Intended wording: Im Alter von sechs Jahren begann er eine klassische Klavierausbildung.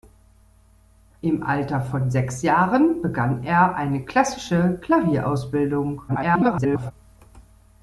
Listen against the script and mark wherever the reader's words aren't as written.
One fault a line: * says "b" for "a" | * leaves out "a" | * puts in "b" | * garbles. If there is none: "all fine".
* garbles